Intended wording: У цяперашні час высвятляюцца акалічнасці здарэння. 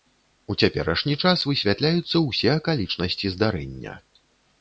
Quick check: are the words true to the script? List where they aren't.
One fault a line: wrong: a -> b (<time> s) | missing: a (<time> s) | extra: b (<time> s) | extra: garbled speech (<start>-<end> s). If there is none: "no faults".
extra: ўсе (2.3 s)